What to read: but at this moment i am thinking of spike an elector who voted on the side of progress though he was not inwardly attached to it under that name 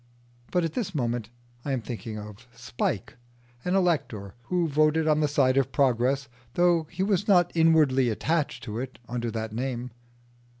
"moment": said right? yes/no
yes